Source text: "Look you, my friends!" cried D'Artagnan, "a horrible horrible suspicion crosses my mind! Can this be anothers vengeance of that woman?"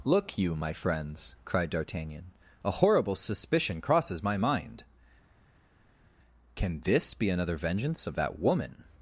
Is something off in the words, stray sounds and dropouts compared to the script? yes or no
yes